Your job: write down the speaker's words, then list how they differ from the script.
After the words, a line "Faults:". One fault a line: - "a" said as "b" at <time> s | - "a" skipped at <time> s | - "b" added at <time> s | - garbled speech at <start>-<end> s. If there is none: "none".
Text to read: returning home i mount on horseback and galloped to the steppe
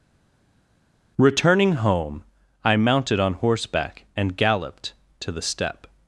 returning home i mounted on horseback and galloped to the steppe
Faults:
- "mount" said as "mounted" at 2.8 s